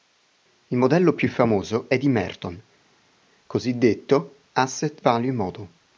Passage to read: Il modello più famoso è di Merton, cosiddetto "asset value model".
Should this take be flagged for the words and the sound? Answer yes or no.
no